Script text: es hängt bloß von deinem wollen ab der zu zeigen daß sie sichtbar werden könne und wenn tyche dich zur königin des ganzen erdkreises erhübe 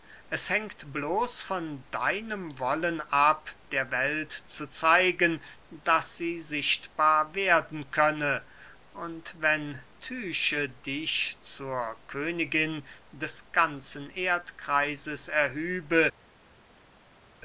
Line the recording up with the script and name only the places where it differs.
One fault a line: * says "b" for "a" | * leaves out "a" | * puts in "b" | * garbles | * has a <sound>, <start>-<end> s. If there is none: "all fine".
* puts in "welt"